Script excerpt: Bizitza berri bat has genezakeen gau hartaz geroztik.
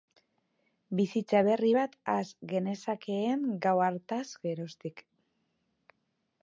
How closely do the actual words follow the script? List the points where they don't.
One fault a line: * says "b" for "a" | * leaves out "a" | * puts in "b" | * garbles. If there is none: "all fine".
all fine